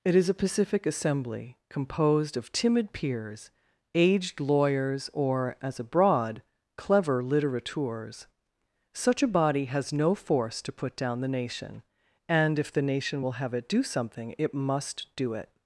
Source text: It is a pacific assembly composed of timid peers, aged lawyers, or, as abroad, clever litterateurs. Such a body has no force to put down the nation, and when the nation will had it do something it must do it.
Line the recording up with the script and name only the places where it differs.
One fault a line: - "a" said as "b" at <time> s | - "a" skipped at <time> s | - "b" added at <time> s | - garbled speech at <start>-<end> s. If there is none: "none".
- "when" said as "if" at 12.6 s
- "had" said as "have" at 13.3 s